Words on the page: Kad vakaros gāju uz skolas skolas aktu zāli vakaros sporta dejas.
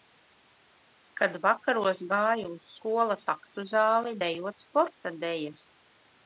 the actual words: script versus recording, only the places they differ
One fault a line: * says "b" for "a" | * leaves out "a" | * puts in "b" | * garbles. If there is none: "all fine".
* leaves out "skolas"
* says "dejot" for "vakaros"